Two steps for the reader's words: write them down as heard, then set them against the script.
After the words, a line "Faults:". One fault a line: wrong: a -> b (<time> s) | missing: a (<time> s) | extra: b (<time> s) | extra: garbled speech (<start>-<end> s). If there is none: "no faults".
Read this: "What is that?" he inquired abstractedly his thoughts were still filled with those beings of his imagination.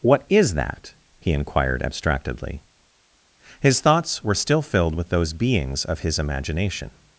"What is that?" he inquired abstractedly his thoughts were still filled with those beings of his imagination.
Faults:
no faults